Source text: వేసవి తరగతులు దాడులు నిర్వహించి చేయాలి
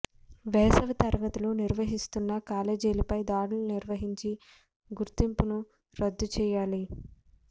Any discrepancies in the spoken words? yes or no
yes